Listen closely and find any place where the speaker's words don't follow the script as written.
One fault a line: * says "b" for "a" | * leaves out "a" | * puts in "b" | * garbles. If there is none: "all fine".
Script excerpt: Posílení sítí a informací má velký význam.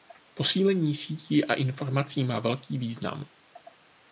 all fine